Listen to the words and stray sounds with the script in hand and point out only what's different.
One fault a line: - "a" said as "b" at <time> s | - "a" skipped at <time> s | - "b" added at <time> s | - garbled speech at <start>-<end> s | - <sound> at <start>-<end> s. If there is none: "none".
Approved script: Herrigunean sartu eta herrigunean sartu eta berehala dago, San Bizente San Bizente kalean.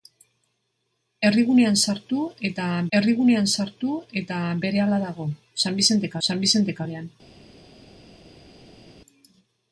none